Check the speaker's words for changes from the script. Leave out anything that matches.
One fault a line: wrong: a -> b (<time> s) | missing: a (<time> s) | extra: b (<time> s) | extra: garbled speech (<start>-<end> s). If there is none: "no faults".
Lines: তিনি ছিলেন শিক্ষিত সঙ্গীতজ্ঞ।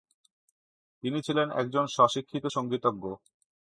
extra: একজন স্ব (1.6 s)